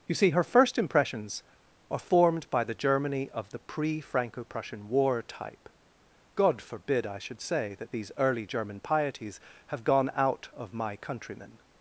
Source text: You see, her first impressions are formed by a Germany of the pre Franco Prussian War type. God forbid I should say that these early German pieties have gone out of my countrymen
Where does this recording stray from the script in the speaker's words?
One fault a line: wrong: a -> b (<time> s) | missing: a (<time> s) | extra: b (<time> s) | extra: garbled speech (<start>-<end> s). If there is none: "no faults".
wrong: a -> the (2.6 s)